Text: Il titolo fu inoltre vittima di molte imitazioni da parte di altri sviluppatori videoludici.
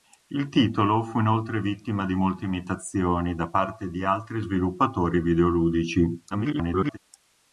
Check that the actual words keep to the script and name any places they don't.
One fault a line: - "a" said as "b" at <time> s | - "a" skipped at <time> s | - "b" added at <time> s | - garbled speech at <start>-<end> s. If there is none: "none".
- garbled speech at 6.3-7.0 s